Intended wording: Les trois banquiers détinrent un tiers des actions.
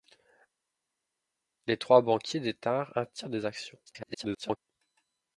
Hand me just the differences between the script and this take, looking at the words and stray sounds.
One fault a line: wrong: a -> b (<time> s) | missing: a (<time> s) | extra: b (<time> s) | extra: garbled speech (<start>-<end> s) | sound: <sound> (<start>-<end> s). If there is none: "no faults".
extra: garbled speech (3.9-4.6 s)